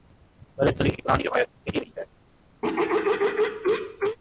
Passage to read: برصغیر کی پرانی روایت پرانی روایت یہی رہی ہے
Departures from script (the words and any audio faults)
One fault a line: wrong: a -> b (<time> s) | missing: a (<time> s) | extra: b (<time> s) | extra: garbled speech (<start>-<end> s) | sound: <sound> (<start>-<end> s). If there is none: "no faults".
missing: پرانی روایت (1.5 s)
sound: throat clearing (2.6-4.2 s)